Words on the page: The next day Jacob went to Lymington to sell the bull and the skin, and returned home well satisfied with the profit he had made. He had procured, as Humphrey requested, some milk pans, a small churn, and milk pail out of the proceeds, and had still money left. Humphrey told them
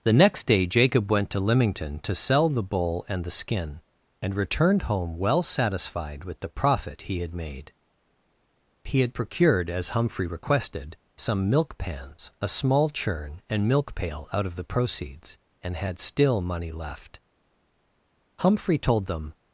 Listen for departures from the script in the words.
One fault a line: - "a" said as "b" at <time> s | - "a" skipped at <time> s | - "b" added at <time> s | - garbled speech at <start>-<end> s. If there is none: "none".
none